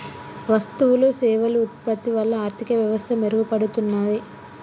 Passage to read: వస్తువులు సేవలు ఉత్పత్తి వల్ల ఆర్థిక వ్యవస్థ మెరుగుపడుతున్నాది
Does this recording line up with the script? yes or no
yes